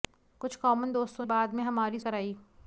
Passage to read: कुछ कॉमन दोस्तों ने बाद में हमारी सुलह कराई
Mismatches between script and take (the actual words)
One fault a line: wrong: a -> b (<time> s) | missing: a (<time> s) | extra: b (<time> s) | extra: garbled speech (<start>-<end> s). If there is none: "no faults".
missing: ने (1.3 s)
missing: सुलह (2.0 s)